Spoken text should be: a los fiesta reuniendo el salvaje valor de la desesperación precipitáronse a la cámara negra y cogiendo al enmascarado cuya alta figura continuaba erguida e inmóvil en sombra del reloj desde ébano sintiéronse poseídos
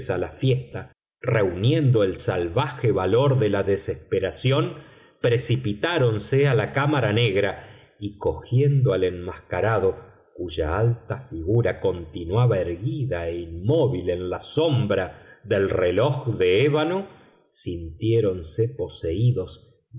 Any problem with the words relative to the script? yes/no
yes